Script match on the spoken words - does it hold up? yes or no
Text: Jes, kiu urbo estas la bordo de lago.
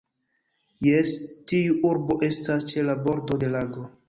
no